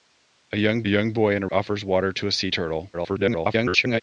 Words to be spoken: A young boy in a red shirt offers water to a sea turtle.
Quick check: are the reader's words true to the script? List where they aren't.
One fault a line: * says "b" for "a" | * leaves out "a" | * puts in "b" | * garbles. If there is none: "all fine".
* puts in "young"
* leaves out "red shirt"
* garbles